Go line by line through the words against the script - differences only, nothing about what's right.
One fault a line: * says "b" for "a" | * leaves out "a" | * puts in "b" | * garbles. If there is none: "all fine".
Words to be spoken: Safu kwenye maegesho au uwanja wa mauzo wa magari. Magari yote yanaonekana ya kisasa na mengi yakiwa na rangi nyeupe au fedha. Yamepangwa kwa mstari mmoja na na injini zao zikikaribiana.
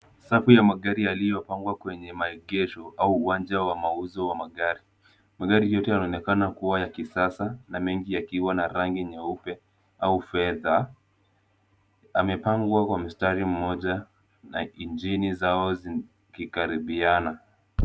* puts in "ya magari yaliyopangwa"
* puts in "kuwa"
* leaves out "na"